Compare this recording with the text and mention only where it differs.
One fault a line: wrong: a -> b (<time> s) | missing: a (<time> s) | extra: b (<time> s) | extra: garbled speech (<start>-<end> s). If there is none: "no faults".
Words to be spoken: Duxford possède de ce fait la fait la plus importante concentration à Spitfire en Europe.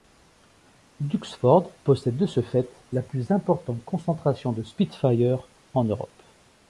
missing: fait la (3.0 s)
wrong: à -> de (4.5 s)